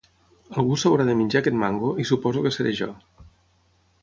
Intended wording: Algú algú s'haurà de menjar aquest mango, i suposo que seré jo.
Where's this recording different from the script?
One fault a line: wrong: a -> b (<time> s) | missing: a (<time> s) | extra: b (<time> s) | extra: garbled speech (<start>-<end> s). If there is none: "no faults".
missing: algú (0.8 s)